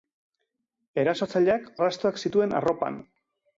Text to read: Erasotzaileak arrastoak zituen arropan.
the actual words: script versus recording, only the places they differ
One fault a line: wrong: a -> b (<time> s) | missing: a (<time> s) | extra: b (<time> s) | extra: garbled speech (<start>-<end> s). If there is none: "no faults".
no faults